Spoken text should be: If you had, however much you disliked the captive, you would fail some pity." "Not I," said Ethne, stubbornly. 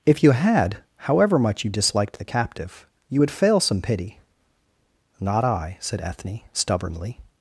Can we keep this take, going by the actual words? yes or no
yes